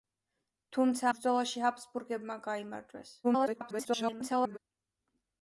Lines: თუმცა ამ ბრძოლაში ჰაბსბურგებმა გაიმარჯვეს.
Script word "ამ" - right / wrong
wrong